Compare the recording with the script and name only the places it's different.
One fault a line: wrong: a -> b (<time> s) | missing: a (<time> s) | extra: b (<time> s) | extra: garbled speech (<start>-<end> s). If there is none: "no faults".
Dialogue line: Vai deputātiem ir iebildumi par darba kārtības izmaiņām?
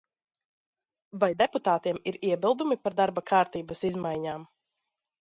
no faults